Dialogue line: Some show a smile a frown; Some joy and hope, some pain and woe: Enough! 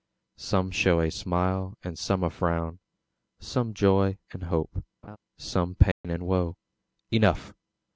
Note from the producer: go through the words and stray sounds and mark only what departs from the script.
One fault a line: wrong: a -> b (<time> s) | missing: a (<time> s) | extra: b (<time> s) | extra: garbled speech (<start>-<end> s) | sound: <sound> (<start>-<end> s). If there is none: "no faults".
extra: and some (1.8 s)
sound: laugh (5.0-5.2 s)
sound: dropout (5.9-6.0 s)